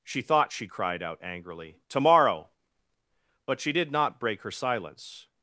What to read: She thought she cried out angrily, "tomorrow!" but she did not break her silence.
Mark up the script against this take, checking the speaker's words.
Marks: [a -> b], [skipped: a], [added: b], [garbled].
She thought she cried out angrily, "tomorrow!" but she did not break her silence.